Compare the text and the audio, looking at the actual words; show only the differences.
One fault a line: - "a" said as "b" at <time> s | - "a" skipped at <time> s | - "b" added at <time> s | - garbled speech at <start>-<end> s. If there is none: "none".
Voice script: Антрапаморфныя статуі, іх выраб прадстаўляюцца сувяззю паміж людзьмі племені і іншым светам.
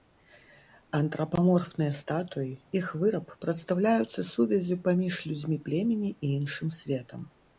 none